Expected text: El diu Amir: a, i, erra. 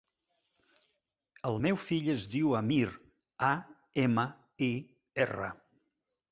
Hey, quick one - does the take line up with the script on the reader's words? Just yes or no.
no